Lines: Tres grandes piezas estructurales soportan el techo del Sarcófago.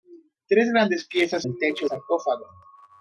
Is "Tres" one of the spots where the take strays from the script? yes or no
no